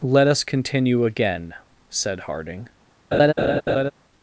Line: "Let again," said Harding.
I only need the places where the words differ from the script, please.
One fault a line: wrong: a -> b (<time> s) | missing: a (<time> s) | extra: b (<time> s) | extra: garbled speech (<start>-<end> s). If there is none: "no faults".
extra: us continue (0.3 s)